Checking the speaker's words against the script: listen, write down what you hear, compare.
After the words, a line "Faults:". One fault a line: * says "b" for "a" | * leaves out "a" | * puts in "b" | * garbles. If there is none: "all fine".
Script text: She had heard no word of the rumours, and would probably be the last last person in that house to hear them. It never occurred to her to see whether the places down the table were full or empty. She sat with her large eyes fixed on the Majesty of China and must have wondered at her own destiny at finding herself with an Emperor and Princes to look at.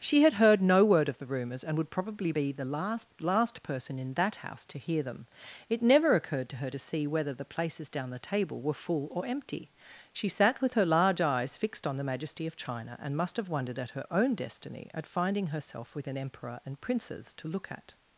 She had heard no word of the rumours, and would probably be the last last person in that house to hear them. It never occurred to her to see whether the places down the table were full or empty. She sat with her large eyes fixed on the Majesty of China and must have wondered at her own destiny at finding herself with an Emperor and Princes to look at.
Faults:
all fine